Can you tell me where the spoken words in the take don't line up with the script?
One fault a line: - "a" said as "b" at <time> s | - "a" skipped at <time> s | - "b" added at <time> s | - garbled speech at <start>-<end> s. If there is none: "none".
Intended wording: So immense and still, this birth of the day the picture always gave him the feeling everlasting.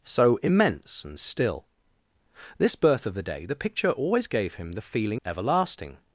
none